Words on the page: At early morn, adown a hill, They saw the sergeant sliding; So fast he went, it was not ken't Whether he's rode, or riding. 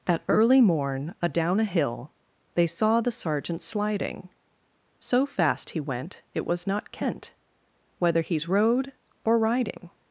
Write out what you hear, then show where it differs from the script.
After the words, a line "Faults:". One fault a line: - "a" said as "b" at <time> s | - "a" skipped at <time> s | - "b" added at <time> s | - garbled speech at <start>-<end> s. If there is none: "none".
At early morn, adown a hill, They saw the sergeant sliding; So fast he went, it was not ken't Whether he's rode, or riding.
Faults:
none